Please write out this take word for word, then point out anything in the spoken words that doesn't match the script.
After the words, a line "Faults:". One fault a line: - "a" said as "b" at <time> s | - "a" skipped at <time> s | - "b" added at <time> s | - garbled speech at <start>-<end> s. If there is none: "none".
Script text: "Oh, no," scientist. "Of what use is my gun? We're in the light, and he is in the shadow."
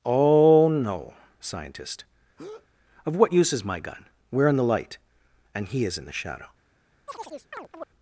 "Oh, no," scientist. "Of what use is my gun? We're in the light, and he is in the shadow."
Faults:
none